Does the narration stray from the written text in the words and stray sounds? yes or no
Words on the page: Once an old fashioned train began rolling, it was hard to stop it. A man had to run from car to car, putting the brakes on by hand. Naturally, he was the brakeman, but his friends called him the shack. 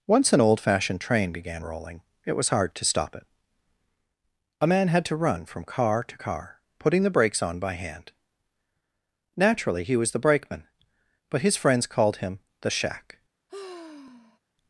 yes